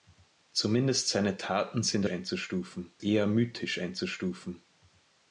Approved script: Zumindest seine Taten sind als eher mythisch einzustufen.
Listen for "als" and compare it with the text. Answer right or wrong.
wrong